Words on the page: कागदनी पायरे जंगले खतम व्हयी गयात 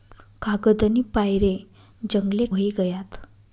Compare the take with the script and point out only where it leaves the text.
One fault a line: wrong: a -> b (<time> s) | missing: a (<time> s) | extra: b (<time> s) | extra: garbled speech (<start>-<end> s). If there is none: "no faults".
missing: खतम (2.5 s)